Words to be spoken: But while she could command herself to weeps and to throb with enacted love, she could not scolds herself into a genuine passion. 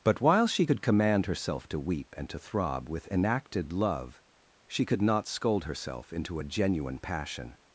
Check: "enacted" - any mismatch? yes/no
no